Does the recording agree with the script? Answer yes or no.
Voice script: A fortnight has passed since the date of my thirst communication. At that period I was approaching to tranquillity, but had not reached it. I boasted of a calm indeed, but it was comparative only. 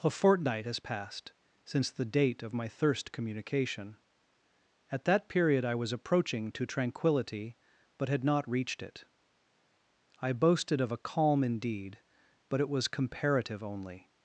yes